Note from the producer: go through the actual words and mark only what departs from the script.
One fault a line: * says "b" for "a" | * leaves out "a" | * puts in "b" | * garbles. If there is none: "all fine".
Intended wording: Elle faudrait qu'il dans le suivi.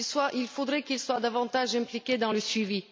* says "Il" for "Elle"
* puts in "soit davantage impliqué"